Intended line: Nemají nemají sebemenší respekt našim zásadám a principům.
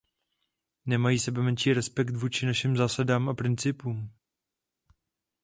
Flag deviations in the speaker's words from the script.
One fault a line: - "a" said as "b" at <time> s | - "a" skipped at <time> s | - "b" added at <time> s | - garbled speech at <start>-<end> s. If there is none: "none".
- "nemají" skipped at 1.2 s
- "vůči" added at 2.1 s